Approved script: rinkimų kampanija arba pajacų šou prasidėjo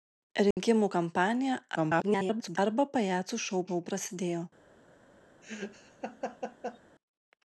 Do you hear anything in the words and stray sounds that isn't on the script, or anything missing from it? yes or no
yes